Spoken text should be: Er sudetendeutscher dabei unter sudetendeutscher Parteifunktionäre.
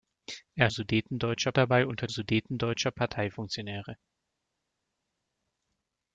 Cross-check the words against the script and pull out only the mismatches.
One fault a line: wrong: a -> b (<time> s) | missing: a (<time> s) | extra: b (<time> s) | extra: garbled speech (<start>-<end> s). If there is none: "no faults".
no faults